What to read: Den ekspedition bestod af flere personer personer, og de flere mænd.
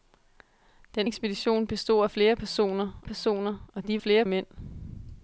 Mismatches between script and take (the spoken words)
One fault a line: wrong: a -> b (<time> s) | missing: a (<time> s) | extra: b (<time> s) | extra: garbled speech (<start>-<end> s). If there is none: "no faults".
no faults